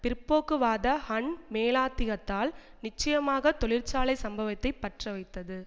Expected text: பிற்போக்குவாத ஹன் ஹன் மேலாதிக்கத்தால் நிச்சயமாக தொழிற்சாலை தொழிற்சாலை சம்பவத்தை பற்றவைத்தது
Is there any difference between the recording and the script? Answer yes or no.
yes